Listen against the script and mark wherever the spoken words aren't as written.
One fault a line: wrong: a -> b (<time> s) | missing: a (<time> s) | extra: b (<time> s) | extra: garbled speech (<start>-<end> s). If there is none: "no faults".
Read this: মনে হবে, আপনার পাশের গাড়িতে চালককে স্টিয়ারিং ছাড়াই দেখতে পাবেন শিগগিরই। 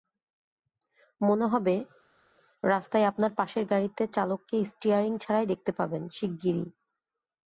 extra: রাস্তায় (2.6 s)